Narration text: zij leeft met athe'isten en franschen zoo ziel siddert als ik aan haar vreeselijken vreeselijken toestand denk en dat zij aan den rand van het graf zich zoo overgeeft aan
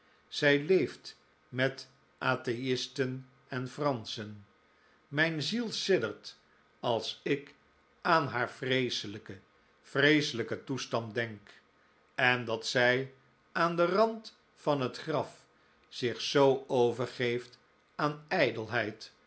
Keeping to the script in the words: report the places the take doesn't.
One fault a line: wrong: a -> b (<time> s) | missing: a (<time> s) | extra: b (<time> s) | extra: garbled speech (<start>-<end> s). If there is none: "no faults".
wrong: zoo -> mijn (5.1 s)